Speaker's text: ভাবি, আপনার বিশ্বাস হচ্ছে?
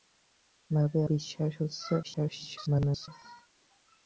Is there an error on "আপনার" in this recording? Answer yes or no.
yes